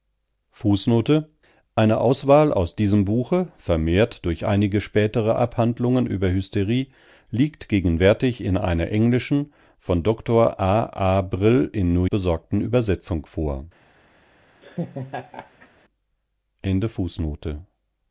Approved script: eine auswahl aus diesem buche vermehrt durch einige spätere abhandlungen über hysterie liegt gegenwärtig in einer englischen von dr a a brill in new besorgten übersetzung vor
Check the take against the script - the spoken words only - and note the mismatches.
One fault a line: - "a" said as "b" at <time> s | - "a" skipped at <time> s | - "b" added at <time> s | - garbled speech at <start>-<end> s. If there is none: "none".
none